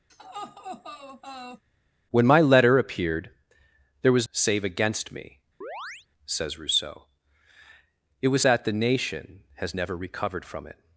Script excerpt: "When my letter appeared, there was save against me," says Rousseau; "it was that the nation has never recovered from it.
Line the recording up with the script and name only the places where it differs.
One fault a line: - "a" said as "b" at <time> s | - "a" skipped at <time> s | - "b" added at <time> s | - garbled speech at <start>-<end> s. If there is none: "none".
none